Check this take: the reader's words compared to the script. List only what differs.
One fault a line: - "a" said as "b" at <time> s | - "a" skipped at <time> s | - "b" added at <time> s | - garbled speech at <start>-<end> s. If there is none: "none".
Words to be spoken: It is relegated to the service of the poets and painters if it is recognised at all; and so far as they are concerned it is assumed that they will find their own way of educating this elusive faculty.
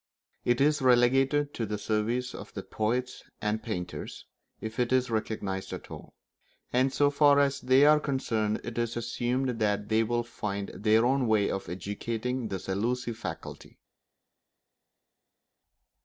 none